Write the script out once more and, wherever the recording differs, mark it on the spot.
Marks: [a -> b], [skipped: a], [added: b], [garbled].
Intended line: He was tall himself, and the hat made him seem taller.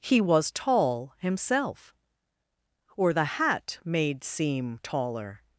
He was tall himself, [and -> or] the hat made [skipped: him] seem taller.